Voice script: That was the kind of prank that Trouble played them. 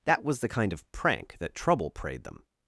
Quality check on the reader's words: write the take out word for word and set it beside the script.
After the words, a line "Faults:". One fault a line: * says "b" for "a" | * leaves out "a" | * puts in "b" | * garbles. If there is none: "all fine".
That was the kind of prank that Trouble prayed them.
Faults:
* says "prayed" for "played"